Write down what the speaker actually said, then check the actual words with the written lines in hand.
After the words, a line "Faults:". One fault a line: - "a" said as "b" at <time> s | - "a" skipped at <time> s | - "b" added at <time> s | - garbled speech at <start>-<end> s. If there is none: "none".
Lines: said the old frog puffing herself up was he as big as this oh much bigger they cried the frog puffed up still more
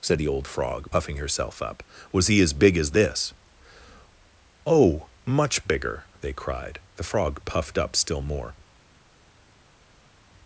said the old frog puffing herself up was he as big as this oh much bigger they cried the frog puffed up still more
Faults:
none